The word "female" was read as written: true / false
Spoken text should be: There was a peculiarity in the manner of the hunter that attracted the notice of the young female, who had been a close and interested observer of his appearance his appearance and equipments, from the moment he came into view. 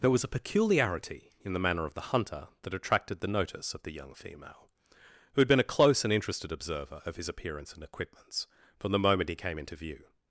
true